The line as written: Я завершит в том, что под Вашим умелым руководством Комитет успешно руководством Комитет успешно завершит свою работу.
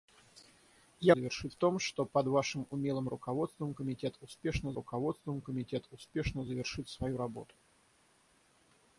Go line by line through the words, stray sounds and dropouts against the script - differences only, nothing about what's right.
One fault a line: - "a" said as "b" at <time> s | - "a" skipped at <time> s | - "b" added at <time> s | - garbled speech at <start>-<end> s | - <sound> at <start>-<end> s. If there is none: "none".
none